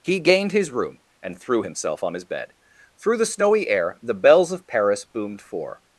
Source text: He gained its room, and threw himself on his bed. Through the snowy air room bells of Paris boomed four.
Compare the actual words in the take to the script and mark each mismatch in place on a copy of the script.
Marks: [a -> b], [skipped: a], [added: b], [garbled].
He gained [its -> his] room, and threw himself on his bed. Through the snowy air [room -> the] bells of Paris boomed four.